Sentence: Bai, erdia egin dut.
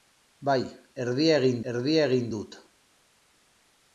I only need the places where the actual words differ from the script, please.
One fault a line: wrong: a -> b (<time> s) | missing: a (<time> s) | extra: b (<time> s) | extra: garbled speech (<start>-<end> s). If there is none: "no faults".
extra: erdia egin (1.7 s)